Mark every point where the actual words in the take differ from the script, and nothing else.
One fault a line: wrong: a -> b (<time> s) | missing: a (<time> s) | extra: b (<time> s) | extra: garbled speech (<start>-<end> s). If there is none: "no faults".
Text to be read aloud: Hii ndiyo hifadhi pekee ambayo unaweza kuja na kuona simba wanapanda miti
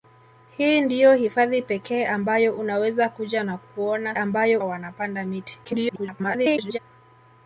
wrong: simba -> ambayo (4.1 s)
extra: garbled speech (5.6-6.8 s)